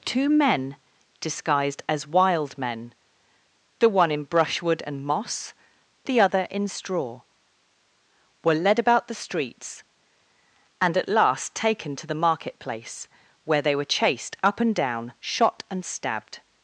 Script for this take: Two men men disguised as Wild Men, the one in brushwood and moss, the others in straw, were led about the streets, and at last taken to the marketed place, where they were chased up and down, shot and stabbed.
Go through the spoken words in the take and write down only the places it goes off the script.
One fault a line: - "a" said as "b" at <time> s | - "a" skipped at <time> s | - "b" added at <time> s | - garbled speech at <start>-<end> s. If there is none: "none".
- "men" skipped at 0.8 s
- "others" said as "other" at 6.2 s
- "marketed" said as "market" at 12.1 s